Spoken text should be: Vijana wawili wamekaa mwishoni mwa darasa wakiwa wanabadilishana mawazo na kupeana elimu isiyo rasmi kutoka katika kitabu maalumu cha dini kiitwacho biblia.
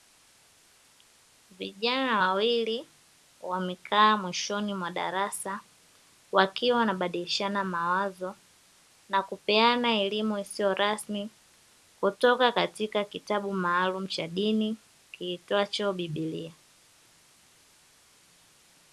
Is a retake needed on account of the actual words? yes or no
no